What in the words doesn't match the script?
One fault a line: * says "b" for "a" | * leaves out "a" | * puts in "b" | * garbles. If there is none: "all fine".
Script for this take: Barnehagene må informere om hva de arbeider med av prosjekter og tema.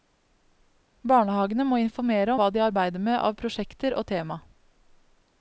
* leaves out "om"